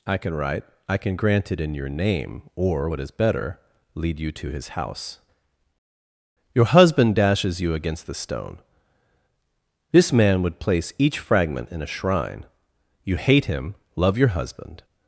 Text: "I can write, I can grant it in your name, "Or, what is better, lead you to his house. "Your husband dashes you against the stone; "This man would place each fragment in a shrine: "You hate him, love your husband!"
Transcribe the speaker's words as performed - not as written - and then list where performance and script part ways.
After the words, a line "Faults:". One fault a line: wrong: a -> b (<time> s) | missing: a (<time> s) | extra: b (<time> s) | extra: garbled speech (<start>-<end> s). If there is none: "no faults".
"I can write, I can grant it in your name, "Or, what is better, lead you to his house. "Your husband dashes you against the stone; "This man would place each fragment in a shrine: "You hate him, love your husband!"
Faults:
no faults